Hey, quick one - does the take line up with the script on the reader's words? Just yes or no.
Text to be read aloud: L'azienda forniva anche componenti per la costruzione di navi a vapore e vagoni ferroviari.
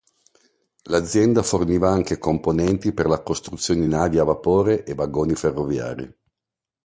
no